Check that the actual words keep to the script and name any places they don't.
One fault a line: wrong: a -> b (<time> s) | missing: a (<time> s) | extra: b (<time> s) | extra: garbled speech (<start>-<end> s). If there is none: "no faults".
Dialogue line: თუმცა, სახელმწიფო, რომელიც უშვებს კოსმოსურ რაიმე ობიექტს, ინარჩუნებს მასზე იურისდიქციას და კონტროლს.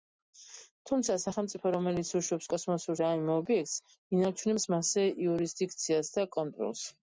no faults